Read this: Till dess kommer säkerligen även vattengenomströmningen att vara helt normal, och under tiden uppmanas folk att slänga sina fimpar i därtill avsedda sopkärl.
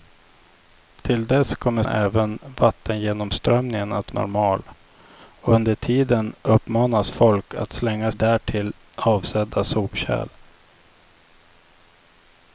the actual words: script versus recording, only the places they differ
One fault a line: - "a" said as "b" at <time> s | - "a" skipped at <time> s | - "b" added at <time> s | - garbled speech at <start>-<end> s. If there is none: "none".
- "säkerligen" skipped at 1.8 s
- "vara helt" skipped at 4.1 s
- "sina fimpar i" skipped at 8.1 s